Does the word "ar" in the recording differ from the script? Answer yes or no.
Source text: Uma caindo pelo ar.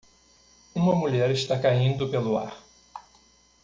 no